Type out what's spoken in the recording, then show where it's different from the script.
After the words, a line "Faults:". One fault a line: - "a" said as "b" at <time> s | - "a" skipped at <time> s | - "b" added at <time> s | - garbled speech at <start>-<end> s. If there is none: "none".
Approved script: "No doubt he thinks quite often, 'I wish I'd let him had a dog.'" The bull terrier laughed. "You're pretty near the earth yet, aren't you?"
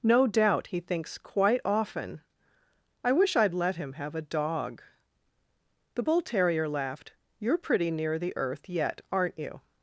"No doubt he thinks quite often, 'I wish I'd let him have a dog.'" The bull terrier laughed. "You're pretty near the earth yet, aren't you?"
Faults:
- "had" said as "have" at 3.9 s